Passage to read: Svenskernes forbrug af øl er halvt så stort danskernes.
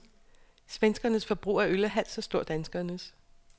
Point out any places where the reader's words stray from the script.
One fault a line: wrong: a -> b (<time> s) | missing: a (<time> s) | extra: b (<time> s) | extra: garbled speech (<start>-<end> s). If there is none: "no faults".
no faults